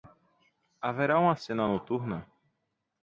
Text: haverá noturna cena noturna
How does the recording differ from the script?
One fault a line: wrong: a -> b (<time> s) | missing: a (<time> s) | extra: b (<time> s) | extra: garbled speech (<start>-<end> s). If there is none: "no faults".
wrong: noturna -> uma (1.2 s)